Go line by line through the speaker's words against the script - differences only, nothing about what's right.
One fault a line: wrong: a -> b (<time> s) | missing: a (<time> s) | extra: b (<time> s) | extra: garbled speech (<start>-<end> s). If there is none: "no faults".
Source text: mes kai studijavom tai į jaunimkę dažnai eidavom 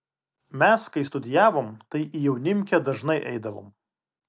no faults